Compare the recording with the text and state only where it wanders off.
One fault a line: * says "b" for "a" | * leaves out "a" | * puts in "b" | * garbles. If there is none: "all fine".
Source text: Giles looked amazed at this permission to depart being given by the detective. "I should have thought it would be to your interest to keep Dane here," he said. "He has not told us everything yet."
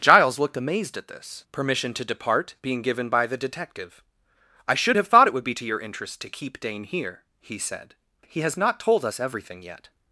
all fine